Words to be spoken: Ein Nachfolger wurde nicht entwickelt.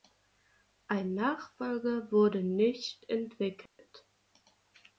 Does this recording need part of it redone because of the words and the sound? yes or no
yes